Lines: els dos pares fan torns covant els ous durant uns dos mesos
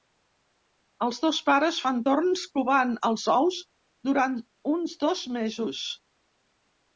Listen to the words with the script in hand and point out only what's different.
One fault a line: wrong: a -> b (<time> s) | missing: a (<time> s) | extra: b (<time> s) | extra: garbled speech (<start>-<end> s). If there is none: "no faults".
no faults